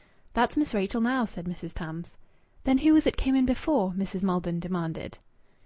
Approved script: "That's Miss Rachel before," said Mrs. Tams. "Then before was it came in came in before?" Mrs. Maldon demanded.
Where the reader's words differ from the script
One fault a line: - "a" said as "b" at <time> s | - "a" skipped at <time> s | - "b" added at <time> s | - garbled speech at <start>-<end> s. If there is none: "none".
- "before" said as "now" at 1.0 s
- "before" said as "who" at 2.8 s
- "came in" skipped at 3.4 s